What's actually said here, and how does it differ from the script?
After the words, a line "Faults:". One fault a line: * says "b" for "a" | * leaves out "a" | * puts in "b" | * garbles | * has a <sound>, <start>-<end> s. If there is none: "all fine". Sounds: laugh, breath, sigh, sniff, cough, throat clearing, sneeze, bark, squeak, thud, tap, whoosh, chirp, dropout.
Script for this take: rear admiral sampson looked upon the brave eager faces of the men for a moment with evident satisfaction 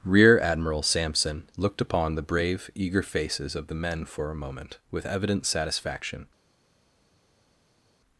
rear admiral sampson looked upon the brave eager faces of the men for a moment with evident satisfaction
Faults:
all fine